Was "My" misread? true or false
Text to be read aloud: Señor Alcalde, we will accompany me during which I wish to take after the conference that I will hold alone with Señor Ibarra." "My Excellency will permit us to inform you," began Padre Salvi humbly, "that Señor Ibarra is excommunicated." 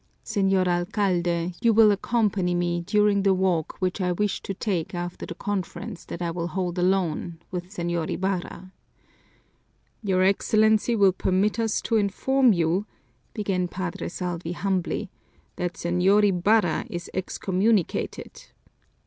true